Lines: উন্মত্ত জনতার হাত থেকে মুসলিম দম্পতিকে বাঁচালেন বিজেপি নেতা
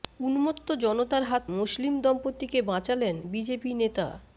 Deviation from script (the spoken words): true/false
true